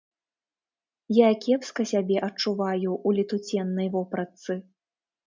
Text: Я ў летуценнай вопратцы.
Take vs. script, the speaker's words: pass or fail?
fail